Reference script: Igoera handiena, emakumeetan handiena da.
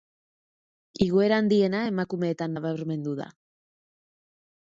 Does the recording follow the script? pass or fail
fail